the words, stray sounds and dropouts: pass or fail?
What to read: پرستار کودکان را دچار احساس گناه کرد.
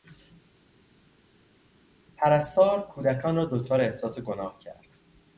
pass